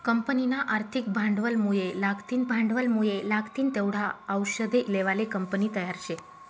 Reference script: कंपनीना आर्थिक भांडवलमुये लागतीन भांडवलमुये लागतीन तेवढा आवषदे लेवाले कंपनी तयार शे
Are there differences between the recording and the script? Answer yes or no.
no